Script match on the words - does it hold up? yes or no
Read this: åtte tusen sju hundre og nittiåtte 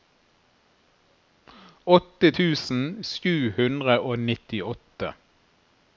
yes